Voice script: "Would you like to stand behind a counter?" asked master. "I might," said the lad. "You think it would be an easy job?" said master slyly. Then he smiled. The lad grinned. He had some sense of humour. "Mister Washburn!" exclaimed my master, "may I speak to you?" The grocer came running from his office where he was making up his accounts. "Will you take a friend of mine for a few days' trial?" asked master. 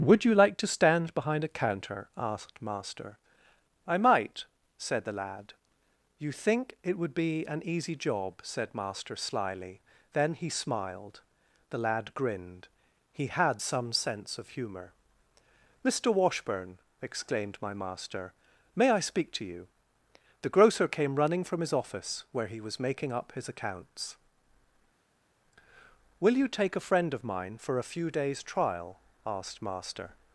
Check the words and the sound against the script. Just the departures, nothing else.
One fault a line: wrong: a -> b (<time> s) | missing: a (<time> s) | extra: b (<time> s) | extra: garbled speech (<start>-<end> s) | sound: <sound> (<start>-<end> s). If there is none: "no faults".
no faults